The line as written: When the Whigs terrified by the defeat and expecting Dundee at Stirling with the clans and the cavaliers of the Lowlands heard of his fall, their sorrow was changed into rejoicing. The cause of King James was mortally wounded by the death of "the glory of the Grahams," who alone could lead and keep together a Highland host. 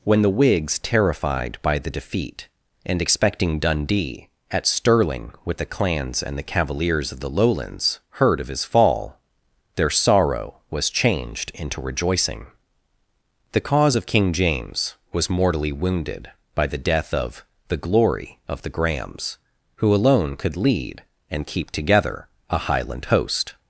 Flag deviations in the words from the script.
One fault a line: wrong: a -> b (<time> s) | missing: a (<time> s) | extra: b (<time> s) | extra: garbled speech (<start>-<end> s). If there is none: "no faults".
no faults